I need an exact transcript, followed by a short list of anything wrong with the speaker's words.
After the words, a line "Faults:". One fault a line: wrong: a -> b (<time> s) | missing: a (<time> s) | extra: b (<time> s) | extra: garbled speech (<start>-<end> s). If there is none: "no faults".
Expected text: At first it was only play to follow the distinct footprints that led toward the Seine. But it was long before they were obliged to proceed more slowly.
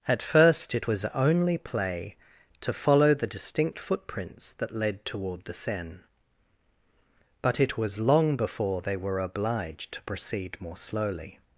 At first it was only play to follow the distinct footprints that led toward the Seine. But it was long before they were obliged to proceed more slowly.
Faults:
no faults